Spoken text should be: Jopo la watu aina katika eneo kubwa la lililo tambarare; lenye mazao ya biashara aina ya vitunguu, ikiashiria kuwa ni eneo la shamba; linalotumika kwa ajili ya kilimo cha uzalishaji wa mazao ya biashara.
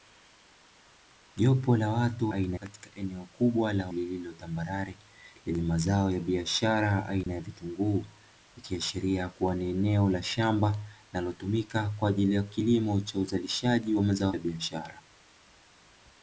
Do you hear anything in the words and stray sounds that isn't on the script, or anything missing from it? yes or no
yes